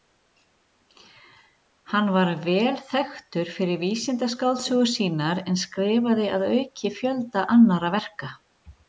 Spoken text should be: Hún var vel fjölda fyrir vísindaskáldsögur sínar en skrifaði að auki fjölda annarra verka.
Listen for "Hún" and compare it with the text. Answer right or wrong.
wrong